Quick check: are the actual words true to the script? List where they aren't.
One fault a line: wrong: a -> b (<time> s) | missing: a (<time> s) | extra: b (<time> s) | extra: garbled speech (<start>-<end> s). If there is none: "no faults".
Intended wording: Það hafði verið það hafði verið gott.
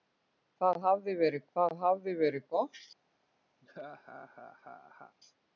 no faults